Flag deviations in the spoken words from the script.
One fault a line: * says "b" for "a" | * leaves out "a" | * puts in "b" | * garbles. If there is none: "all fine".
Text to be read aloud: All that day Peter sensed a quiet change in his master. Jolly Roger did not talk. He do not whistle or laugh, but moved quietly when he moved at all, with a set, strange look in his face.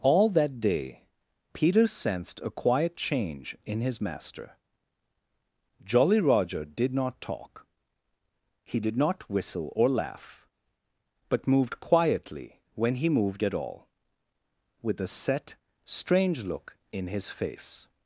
* says "did" for "do"